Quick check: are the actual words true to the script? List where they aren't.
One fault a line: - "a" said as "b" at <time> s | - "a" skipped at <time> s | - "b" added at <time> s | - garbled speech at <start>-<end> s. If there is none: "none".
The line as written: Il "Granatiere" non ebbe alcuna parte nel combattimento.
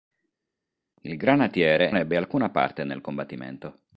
- "non" skipped at 2.0 s